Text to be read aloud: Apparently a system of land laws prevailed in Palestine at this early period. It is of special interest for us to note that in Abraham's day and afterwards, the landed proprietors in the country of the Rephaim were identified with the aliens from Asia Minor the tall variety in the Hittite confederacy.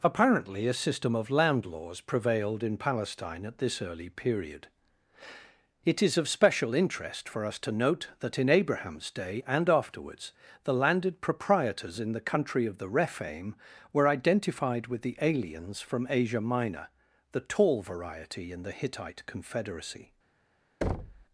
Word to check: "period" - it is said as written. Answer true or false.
true